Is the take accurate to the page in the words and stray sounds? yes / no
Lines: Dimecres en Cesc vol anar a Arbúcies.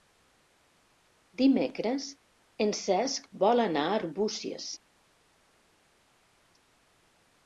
yes